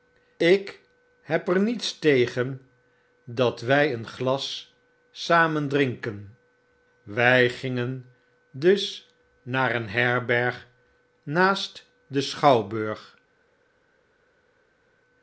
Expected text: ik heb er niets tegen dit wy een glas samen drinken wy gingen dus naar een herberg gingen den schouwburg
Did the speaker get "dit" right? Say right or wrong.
wrong